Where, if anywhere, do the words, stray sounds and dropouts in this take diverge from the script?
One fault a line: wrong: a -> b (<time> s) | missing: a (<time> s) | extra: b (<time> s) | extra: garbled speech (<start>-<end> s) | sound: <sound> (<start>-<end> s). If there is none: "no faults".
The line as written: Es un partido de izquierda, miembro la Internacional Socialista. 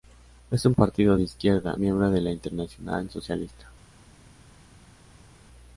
extra: de (2.1 s)